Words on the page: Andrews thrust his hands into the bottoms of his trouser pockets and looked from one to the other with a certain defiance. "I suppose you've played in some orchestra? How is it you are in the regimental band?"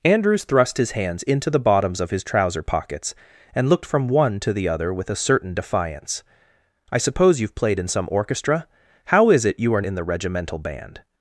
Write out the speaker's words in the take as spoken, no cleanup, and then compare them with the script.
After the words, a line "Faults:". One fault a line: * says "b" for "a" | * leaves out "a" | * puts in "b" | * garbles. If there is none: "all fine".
Andrews thrust his hands into the bottoms of his trouser pockets and looked from one to the other with a certain defiance. "I suppose you've played in some orchestra? How is it you are in the regimental band?"
Faults:
all fine